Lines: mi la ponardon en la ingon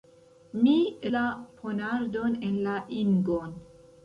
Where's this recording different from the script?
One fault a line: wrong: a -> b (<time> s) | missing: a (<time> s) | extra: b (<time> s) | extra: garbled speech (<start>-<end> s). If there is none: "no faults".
no faults